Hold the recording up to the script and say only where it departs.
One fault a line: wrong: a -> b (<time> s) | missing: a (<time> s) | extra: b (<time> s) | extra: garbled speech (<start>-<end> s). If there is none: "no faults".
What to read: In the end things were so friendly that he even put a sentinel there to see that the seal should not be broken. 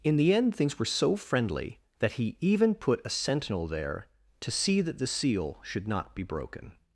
no faults